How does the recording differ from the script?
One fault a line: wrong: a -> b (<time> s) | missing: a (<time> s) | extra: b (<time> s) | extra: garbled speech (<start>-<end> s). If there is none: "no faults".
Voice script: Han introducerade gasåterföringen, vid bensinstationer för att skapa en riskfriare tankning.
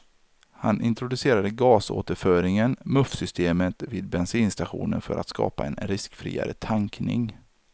extra: muffsystemet (2.9 s)